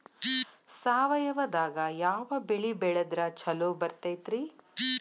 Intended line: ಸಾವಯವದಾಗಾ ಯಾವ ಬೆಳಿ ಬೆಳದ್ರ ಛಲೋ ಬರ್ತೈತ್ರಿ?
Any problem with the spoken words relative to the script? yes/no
no